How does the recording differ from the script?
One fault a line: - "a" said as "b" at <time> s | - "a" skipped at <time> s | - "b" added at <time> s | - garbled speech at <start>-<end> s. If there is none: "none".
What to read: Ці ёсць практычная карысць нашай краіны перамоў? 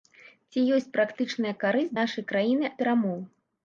none